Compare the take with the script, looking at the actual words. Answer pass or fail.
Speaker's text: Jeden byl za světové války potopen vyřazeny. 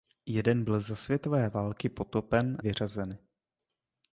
pass